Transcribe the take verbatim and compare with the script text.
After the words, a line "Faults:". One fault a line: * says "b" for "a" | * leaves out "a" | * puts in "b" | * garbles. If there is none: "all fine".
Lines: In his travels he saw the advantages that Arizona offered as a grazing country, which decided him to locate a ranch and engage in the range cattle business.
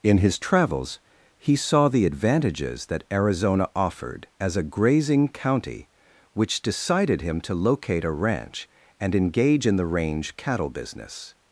In his travels he saw the advantages that Arizona offered as a grazing county, which decided him to locate a ranch and engage in the range cattle business.
Faults:
* says "county" for "country"